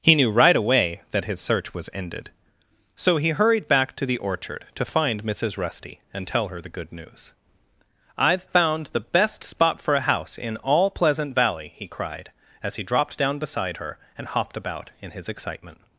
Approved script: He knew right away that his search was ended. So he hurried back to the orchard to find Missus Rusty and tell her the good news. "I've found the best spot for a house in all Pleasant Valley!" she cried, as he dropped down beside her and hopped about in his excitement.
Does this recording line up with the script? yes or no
no